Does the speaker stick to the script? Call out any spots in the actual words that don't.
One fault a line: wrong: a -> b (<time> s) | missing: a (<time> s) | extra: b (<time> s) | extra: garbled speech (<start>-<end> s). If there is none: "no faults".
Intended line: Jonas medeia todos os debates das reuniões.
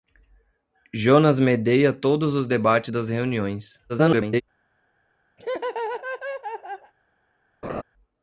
extra: garbled speech (3.9-4.4 s)